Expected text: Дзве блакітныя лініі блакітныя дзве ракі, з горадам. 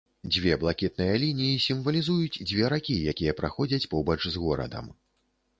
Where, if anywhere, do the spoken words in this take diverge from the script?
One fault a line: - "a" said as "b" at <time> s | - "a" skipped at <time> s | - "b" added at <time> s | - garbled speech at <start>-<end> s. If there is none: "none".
- "блакітныя" said as "сімвалізуюць" at 1.7 s
- "якія праходзяць побач" added at 3.1 s